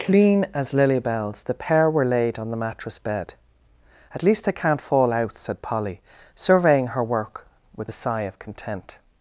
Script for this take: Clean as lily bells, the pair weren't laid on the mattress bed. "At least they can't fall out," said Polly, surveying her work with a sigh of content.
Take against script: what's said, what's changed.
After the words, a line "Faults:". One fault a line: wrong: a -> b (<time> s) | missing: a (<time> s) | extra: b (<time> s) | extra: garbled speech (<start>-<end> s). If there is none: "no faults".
Clean as lily bells, the pair were laid on the mattress bed. "At least they can't fall out," said Polly, surveying her work with a sigh of content.
Faults:
wrong: weren't -> were (1.9 s)